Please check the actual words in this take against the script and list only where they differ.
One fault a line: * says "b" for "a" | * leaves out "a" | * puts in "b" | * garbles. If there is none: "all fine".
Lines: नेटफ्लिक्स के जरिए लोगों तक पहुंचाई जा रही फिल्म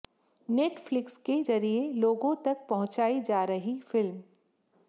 all fine